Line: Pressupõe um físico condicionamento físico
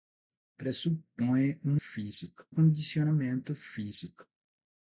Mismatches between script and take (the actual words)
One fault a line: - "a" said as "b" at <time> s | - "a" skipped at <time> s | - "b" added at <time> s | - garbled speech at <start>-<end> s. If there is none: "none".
none